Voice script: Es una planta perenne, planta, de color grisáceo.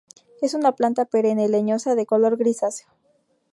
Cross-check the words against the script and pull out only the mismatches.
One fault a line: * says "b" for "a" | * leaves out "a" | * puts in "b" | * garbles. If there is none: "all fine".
* says "leñosa" for "planta"